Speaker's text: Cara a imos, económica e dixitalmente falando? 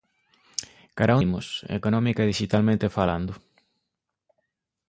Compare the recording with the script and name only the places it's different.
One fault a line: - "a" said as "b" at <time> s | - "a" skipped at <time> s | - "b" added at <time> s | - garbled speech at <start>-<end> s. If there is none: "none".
none